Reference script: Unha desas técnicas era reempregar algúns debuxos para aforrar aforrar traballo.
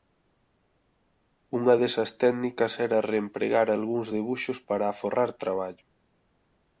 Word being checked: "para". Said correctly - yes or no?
yes